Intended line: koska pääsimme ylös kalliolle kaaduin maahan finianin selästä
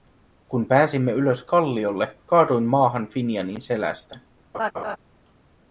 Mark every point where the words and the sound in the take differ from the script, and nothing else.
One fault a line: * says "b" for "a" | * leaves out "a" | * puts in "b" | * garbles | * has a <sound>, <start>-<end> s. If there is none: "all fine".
* says "kun" for "koska"
* has a laugh, 4.5-5.0 s